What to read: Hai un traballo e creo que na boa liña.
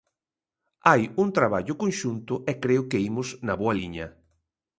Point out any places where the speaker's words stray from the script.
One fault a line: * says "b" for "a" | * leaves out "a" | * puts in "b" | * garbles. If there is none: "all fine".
* puts in "conxunto"
* puts in "imos"